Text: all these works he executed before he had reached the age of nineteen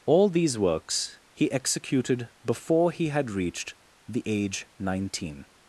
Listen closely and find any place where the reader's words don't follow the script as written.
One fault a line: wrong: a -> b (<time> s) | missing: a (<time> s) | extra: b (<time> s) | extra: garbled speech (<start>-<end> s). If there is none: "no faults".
missing: of (4.7 s)